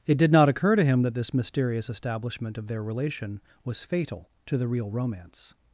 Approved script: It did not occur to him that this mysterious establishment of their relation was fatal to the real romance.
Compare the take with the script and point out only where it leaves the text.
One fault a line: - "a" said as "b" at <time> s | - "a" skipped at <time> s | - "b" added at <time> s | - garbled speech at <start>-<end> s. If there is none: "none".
none